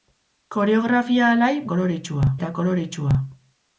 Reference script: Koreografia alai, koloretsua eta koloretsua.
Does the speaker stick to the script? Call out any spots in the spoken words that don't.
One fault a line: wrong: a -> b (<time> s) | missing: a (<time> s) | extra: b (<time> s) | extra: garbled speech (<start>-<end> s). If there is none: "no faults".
no faults